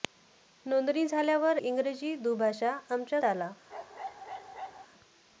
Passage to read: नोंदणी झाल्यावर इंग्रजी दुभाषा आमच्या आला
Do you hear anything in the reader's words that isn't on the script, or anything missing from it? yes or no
no